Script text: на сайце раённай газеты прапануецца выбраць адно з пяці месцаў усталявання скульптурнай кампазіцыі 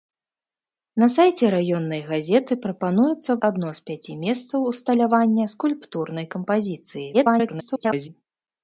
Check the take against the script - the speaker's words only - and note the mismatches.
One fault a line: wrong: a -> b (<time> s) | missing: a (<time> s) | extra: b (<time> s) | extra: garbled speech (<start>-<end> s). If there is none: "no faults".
missing: выбраць (3.3 s)
extra: garbled speech (7.1-8.1 s)